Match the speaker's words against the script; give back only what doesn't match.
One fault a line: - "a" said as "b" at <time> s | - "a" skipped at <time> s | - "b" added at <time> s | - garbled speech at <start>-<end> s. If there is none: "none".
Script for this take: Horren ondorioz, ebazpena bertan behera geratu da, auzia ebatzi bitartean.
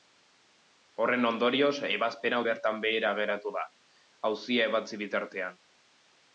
none